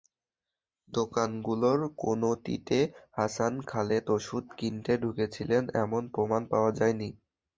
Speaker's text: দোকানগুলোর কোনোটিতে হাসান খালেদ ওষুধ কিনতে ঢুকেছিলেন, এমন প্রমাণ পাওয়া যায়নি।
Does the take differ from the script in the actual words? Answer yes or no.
no